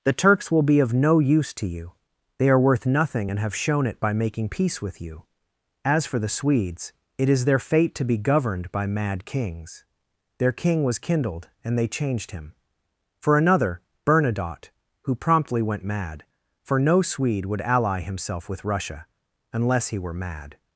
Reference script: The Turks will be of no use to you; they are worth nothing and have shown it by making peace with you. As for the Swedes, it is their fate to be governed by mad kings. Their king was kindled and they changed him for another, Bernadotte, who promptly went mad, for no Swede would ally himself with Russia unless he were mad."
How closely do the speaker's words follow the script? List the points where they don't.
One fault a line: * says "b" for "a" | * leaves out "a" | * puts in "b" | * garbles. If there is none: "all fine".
all fine